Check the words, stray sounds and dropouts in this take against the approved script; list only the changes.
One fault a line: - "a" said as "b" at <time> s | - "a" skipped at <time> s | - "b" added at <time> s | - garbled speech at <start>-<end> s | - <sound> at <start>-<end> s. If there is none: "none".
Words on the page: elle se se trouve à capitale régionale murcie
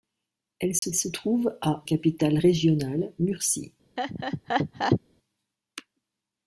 - dropout at 0.8-0.8 s
- laugh at 4.0-5.0 s